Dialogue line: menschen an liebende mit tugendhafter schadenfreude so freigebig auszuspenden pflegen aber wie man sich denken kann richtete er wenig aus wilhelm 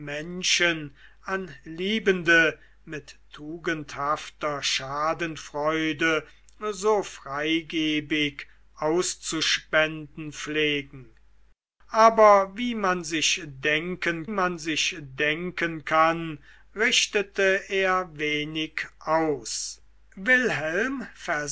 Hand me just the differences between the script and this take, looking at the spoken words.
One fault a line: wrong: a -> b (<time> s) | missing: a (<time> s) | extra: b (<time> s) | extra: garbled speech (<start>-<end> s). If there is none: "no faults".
extra: man sich denken (14.3 s)